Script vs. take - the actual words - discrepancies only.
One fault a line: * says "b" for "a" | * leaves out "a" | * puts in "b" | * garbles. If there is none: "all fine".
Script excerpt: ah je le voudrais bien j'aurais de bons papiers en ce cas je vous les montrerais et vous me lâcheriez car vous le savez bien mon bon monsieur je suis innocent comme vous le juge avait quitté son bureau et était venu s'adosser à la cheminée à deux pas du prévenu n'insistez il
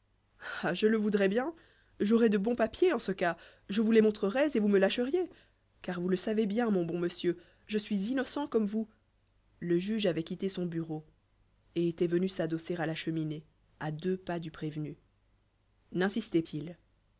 all fine